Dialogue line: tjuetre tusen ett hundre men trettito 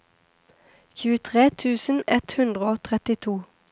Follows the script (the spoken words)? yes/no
no